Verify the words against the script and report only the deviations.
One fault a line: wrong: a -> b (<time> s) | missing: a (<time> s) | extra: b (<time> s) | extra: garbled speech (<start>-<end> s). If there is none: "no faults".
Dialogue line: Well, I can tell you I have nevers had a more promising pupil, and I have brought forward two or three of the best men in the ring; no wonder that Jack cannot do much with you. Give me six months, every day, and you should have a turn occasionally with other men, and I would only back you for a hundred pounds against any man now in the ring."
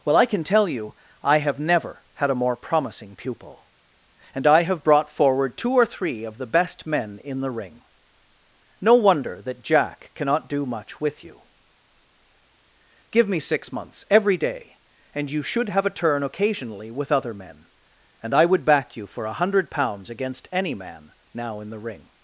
wrong: nevers -> never (1.6 s)
missing: only (18.6 s)